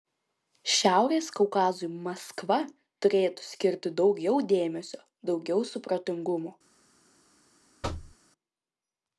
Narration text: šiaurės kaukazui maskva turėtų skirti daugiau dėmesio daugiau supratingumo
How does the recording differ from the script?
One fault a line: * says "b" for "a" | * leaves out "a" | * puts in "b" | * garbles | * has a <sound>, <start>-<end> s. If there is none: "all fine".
* has a thud, 7.8-8.2 s